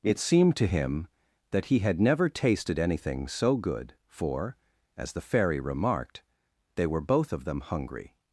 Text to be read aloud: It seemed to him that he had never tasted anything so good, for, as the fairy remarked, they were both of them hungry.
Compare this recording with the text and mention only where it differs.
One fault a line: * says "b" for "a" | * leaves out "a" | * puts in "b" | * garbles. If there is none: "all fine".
all fine